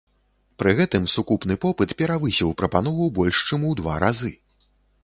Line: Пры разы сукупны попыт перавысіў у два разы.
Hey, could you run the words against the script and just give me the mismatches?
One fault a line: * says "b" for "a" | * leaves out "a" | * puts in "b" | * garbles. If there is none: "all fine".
* says "гэтым" for "разы"
* puts in "прапанову больш чым"